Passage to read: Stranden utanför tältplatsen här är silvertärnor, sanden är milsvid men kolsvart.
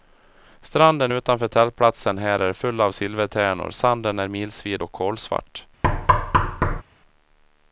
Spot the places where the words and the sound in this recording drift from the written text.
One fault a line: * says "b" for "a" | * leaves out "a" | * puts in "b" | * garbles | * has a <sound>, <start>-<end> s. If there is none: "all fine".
* puts in "full av"
* says "och" for "men"
* has a thud, 5.8-6.8 s